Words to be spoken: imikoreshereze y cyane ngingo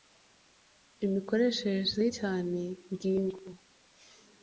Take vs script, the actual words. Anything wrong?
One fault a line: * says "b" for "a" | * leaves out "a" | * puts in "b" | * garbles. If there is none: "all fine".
all fine